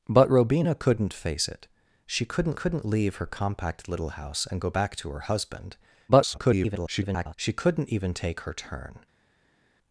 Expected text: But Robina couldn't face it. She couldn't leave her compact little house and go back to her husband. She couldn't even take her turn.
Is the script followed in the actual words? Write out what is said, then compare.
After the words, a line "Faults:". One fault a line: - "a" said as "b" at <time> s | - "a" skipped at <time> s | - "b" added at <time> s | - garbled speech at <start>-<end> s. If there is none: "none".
But Robina couldn't face it. She couldn't couldn't leave her compact little house and go back to her husband. [garbled] She couldn't even take her turn.
Faults:
- "couldn't" added at 2.5 s
- garbled speech at 6.1-7.3 s